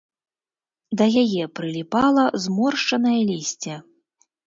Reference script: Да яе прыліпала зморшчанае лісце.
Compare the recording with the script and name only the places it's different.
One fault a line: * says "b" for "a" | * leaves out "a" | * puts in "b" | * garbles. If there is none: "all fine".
all fine